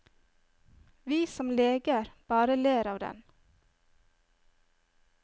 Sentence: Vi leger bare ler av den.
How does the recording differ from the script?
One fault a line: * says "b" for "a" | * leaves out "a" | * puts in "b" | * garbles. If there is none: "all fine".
* puts in "som"